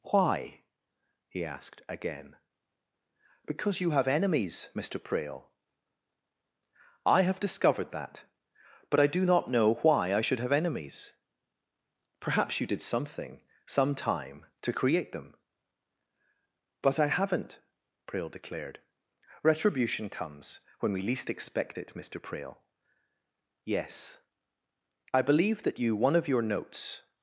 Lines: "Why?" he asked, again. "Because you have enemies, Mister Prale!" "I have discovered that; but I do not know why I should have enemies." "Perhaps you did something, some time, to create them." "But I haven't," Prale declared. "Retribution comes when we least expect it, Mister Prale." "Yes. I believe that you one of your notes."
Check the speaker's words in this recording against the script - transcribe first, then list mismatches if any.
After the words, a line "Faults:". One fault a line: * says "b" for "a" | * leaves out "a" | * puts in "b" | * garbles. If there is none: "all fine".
"Why?" he asked, again. "Because you have enemies, Mister Prale!" "I have discovered that; but I do not know why I should have enemies." "Perhaps you did something, some time, to create them." "But I haven't," Prale declared. "Retribution comes when we least expect it, Mister Prale." "Yes. I believe that you one of your notes."
Faults:
all fine